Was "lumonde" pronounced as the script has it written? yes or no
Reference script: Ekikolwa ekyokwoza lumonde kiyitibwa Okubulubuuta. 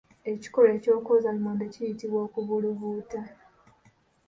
yes